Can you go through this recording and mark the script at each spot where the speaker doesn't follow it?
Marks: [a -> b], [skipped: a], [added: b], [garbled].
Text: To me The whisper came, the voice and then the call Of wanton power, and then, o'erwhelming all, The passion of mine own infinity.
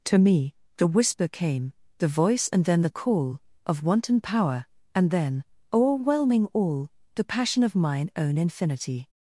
To me The whisper came, the voice and then the call Of wanton power, and then, o'erwhelming all, The passion of mine own infinity.